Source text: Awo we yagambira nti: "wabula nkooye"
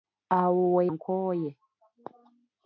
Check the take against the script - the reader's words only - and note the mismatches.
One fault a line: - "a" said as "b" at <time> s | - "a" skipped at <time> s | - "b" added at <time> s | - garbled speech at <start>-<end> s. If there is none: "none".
- "yagambira nti wabula" skipped at 0.8 s